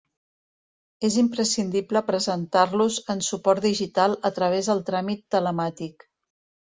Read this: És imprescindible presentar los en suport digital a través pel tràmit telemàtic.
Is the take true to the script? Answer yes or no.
no